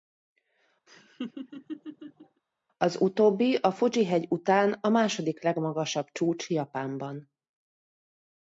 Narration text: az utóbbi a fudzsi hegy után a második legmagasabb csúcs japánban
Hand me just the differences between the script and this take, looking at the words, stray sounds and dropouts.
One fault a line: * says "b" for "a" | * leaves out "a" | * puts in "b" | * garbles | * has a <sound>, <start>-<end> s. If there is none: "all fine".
* has a laugh, 0.9-2.4 s